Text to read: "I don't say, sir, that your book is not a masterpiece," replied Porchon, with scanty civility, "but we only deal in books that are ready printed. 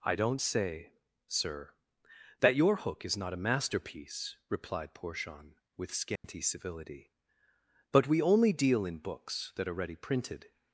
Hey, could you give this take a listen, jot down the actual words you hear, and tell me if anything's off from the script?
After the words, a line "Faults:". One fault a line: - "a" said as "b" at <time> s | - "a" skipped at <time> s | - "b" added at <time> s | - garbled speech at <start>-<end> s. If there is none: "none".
"I don't say, sir, that your hook is not a masterpiece," replied Porchon, with scanty civility, "but we only deal in books that are ready printed.
Faults:
- "book" said as "hook" at 2.8 s